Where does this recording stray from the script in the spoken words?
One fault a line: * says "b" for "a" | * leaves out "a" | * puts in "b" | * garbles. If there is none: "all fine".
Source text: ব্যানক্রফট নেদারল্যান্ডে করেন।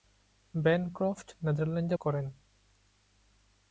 all fine